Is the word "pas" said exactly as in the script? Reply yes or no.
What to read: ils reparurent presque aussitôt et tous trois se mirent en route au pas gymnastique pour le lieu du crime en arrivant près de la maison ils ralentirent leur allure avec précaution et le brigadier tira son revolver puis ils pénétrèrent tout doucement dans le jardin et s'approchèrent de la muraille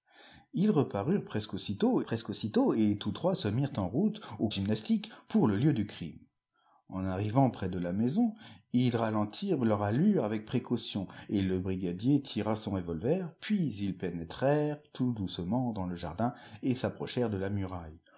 no